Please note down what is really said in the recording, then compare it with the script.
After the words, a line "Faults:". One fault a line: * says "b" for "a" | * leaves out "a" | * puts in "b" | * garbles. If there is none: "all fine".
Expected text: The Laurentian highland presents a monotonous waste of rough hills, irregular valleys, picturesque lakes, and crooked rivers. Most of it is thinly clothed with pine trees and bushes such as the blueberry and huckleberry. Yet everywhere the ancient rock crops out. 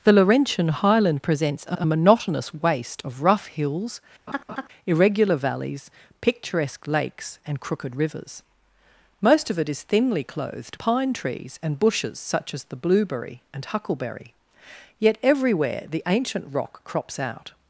The Laurentian highland presents a a monotonous waste of rough hills, irregular valleys, picturesque lakes, and crooked rivers. Most of it is thinly clothed pine trees and bushes such as the blueberry and huckleberry. Yet everywhere the ancient rock crops out.
Faults:
* puts in "a"
* leaves out "with"